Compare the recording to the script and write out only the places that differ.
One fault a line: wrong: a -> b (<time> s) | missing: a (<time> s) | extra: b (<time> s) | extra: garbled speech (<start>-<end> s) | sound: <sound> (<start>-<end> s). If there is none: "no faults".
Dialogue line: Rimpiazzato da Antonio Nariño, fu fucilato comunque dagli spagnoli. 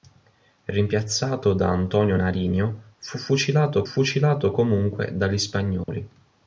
extra: fucilato (3.8 s)
sound: dropout (5.8-5.9 s)